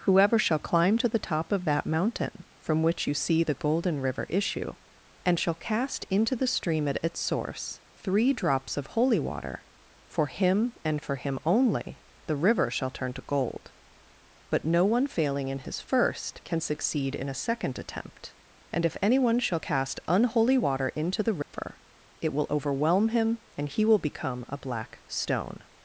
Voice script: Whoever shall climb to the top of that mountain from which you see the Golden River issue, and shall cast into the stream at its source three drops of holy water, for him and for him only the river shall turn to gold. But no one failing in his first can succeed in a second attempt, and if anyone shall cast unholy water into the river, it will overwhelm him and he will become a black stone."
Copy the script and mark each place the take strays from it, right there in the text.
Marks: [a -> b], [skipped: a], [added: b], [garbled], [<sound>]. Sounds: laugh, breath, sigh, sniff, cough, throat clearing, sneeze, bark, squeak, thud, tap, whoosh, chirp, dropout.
Whoever shall climb to the top of that mountain from which you see the Golden River issue, and shall cast into the stream at its source three drops of holy water, for him and for him only the river shall turn to gold. But no one failing in his first can succeed in a second attempt, and if anyone shall cast unholy water into the river, [dropout] it will overwhelm him and he will become a black stone."